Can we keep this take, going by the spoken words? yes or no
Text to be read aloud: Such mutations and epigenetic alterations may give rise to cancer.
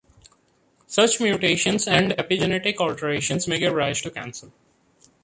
yes